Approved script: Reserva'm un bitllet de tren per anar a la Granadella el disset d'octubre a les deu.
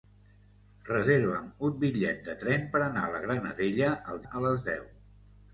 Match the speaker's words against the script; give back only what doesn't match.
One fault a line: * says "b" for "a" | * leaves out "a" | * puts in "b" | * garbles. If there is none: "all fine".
* leaves out "disset d'octubre"